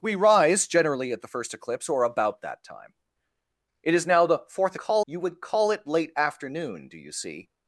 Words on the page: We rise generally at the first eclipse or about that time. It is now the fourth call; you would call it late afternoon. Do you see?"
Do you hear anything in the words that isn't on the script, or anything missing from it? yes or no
no